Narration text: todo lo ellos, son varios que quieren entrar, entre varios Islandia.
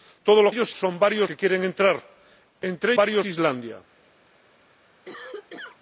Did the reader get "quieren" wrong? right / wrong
right